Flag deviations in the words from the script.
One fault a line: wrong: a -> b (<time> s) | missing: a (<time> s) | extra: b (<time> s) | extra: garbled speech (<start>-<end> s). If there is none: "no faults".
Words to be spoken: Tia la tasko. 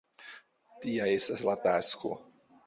extra: estas (1.2 s)